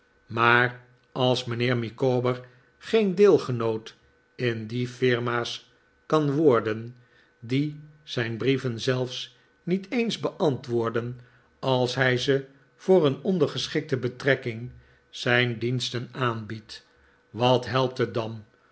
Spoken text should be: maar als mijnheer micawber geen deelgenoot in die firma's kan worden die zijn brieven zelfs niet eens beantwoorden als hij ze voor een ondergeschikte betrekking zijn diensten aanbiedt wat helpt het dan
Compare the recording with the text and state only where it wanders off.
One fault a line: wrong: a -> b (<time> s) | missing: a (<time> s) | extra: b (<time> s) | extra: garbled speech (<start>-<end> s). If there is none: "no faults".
no faults